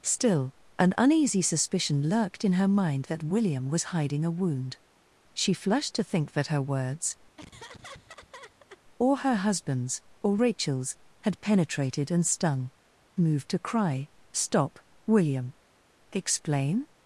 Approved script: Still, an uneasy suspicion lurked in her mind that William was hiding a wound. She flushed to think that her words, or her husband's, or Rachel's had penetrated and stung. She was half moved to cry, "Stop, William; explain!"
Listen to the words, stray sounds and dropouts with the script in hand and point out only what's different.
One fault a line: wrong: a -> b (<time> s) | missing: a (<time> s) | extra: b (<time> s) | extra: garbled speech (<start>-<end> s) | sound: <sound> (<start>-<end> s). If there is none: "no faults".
sound: laugh (7.4-8.8 s)
missing: She was half (12.7 s)